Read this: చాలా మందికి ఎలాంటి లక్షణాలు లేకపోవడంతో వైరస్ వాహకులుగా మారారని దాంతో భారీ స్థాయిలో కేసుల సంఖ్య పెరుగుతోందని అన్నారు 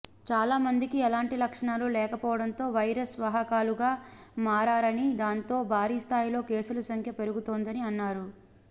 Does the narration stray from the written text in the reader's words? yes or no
no